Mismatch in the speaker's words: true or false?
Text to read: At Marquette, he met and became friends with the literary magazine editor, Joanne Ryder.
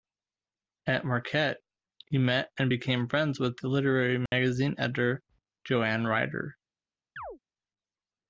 false